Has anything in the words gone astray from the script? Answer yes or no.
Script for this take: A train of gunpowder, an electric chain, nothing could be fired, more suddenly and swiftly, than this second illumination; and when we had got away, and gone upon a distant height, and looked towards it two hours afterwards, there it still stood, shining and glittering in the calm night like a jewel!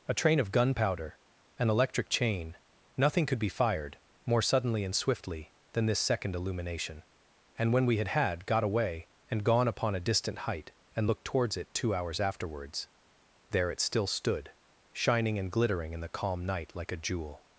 yes